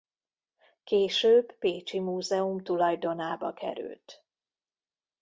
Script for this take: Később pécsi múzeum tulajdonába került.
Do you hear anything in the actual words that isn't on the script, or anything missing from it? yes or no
no